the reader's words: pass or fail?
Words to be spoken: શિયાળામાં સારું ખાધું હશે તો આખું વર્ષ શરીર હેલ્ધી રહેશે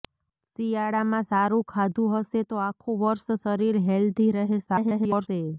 fail